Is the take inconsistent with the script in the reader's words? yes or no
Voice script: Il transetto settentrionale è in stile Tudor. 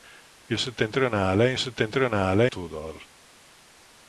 yes